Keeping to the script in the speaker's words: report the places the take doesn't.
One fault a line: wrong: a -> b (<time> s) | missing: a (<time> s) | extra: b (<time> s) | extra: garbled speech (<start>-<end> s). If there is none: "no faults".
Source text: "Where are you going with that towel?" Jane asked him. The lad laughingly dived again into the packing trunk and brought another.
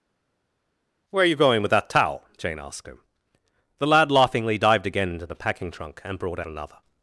no faults